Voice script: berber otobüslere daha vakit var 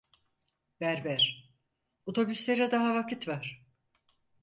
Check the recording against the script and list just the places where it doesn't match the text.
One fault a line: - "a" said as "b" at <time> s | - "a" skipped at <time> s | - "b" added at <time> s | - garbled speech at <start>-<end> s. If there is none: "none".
none